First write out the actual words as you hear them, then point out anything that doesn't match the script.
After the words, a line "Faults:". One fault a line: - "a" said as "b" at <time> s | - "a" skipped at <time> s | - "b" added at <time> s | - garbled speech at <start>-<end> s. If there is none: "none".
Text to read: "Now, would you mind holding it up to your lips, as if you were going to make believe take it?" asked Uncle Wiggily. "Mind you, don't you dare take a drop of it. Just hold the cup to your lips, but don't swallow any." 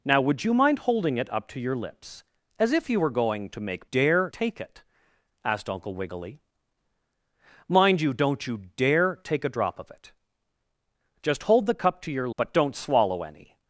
"Now, would you mind holding it up to your lips, as if you were going to make dare take it?" asked Uncle Wiggily. "Mind you, don't you dare take a drop of it. Just hold the cup to your but don't swallow any."
Faults:
- "believe" said as "dare" at 3.9 s
- "lips" skipped at 12.3 s